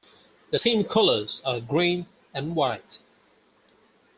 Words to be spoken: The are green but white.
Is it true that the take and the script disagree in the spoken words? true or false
true